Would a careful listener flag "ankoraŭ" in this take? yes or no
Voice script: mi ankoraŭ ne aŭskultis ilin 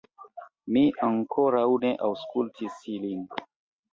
no